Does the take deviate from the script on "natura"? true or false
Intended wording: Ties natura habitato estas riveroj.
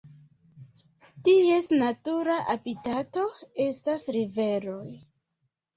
false